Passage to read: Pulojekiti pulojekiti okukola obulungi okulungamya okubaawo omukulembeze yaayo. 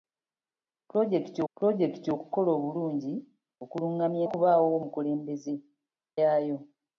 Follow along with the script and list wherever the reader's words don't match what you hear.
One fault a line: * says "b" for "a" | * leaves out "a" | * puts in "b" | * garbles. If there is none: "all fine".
all fine